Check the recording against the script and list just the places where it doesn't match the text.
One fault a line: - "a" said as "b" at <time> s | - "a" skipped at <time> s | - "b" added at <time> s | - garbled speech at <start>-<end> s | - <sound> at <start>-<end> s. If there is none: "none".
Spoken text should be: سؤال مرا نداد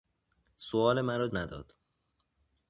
none